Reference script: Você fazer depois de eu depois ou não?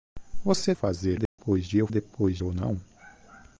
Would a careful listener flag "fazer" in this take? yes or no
no